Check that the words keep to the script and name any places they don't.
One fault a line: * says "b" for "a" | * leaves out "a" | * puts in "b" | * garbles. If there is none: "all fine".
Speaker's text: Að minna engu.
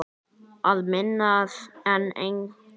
* puts in "en"